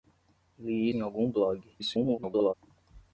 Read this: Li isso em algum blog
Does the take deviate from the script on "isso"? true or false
true